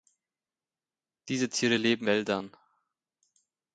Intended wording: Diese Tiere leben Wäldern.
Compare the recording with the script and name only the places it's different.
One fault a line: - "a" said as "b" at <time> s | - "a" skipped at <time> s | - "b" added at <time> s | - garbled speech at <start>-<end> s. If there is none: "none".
none